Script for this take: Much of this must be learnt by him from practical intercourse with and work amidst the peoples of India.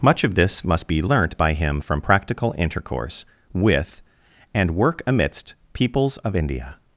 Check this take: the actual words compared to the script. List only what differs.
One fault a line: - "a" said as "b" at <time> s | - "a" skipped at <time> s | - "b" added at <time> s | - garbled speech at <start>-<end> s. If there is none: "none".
- "the" skipped at 5.6 s